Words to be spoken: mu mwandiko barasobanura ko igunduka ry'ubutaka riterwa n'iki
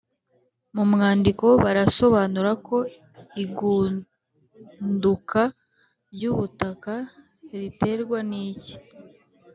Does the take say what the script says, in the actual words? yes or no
yes